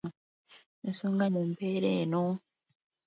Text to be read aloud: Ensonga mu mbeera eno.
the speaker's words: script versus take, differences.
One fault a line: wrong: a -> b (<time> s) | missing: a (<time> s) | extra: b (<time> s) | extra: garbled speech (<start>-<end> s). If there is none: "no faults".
no faults